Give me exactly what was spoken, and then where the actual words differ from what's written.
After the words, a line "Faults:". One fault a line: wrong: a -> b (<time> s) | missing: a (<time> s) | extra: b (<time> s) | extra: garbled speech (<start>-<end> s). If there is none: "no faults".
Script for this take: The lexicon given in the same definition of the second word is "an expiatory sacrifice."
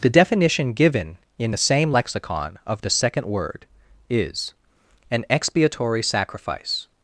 The definition given in the same lexicon of the second word is "an expiatory sacrifice."
Faults:
wrong: lexicon -> definition (0.1 s)
wrong: definition -> lexicon (1.9 s)